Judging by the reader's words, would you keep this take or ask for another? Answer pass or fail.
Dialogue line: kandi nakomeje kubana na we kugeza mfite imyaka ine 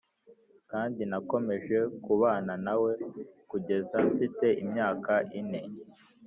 pass